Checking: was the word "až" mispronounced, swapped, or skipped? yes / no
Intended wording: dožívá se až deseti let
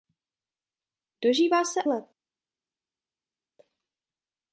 yes